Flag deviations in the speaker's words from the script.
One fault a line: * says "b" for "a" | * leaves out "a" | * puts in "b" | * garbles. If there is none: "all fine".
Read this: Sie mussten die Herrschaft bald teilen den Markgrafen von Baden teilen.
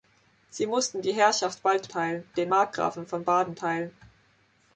all fine